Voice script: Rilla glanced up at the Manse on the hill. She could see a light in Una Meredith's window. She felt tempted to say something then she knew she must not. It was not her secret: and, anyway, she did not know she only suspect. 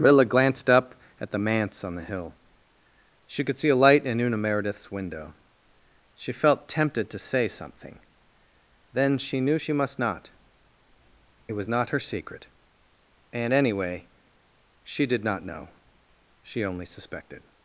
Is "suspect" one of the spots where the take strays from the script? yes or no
yes